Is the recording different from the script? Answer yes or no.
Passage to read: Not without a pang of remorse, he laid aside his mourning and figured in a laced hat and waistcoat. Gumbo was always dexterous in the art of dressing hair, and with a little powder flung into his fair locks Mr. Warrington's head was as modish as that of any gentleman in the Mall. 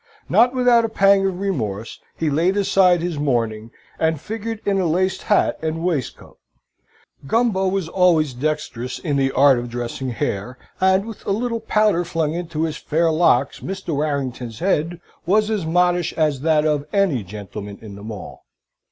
no